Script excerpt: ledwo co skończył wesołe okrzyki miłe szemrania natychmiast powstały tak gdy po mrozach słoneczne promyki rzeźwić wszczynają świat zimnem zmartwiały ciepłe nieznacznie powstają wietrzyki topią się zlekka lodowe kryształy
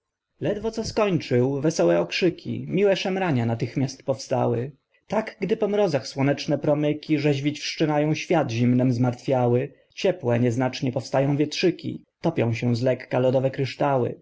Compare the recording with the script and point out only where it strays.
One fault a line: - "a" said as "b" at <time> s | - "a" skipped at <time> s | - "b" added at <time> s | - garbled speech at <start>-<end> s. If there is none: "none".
none